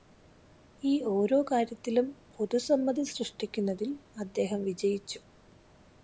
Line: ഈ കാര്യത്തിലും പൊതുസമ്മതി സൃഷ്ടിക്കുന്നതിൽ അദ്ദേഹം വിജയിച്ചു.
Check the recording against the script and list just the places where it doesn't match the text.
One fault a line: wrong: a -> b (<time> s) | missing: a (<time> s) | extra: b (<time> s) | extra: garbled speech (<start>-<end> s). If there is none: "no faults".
extra: ഓരോ (1.1 s)